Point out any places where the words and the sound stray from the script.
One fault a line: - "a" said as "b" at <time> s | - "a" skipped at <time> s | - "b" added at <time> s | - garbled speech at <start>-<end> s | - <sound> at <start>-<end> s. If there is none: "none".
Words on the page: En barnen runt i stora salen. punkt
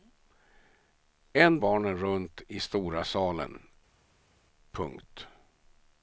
none